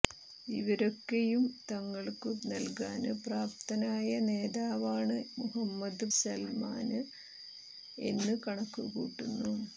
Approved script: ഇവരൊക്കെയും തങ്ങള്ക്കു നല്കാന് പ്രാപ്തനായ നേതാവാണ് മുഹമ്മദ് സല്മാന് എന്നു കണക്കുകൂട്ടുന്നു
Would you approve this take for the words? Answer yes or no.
yes